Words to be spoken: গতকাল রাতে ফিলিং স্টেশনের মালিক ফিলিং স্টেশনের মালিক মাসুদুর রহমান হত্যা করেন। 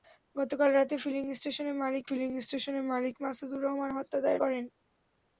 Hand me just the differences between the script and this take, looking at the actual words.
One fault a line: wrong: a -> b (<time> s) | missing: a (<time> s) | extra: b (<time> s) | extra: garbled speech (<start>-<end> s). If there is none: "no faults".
no faults